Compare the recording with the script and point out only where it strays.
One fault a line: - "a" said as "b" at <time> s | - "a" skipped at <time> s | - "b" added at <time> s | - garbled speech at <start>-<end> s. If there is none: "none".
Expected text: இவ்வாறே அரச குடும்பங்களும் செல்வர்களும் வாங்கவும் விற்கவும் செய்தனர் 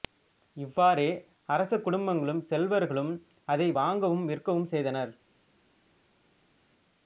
- "அதை" added at 3.5 s